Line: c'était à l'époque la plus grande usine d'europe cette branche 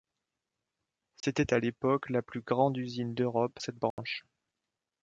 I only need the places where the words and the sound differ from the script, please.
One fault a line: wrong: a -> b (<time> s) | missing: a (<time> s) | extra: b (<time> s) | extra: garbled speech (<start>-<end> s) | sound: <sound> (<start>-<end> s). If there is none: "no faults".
sound: dropout (1.2-1.2 s)
sound: dropout (3.9-4.0 s)